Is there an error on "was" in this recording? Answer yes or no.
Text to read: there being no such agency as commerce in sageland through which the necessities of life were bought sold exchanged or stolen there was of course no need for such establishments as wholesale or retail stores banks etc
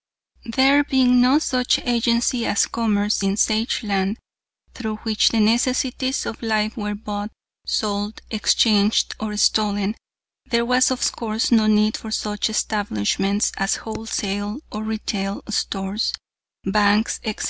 no